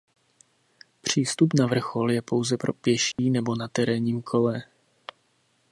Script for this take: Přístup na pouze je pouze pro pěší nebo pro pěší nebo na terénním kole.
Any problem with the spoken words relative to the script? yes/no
yes